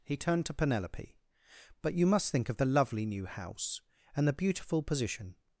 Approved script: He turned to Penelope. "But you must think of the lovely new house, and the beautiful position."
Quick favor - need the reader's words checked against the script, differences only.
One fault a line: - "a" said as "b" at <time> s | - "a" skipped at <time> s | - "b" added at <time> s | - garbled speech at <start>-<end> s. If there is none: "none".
none